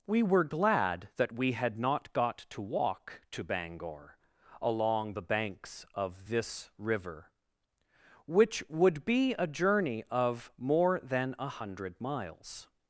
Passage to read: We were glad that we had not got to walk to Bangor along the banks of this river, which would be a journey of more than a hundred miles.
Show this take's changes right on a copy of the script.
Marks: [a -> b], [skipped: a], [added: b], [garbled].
We were glad that we had not got to walk to Bangor along the banks of this river, which would be a journey of more than a hundred miles.